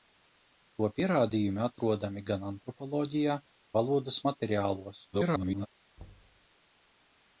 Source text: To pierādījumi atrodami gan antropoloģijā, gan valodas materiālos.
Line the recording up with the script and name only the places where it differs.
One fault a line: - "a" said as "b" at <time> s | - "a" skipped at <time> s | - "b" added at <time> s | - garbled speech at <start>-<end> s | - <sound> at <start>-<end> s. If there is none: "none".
- "gan" skipped at 3.4 s
- garbled speech at 5.1-5.7 s
- thud at 6.0-6.5 s